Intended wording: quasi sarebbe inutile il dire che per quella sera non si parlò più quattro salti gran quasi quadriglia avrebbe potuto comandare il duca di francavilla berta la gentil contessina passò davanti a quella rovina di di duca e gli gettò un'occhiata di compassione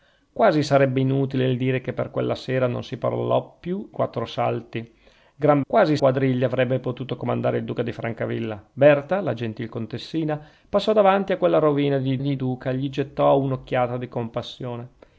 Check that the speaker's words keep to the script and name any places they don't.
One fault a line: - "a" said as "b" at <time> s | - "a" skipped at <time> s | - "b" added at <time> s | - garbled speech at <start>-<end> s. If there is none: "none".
none